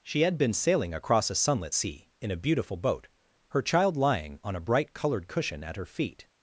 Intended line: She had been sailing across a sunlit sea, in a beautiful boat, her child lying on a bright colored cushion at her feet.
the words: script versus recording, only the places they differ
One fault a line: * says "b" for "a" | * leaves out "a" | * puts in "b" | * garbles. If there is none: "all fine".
all fine